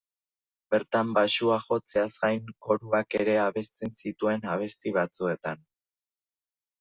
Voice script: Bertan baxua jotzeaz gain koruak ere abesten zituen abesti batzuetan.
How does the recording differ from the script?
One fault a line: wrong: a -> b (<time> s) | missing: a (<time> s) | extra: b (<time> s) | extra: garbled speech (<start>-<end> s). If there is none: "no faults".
no faults